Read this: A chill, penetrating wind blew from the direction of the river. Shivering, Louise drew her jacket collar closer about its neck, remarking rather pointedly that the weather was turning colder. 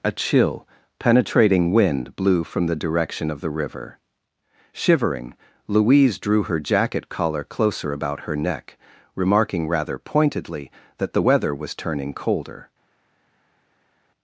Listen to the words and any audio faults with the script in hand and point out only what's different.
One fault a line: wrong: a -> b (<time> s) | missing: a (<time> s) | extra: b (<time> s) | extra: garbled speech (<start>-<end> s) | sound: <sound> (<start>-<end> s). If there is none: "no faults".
wrong: its -> her (8.2 s)